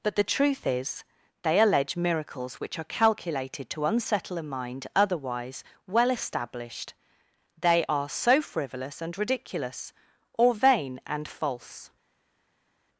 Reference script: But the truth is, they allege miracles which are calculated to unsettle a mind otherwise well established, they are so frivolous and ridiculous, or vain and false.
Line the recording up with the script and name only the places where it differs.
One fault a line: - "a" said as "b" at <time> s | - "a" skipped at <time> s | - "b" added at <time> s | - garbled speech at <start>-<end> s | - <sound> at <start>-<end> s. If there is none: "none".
none